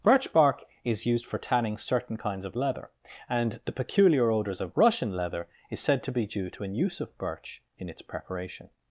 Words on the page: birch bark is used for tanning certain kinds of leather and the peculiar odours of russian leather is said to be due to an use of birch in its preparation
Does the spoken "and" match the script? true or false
true